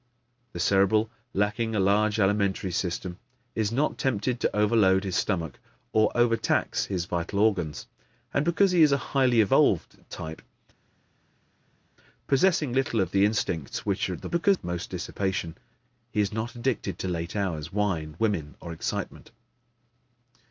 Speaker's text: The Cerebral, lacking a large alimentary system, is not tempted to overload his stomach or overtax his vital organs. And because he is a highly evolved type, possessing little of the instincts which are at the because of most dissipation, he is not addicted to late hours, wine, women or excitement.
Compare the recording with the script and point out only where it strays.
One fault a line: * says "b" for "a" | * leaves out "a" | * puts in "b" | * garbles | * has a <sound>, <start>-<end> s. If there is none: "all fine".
all fine